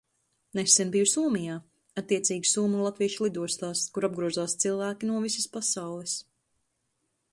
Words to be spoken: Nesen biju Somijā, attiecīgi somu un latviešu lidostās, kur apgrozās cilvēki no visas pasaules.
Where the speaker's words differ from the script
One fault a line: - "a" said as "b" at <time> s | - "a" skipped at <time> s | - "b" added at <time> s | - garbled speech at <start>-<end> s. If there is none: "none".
none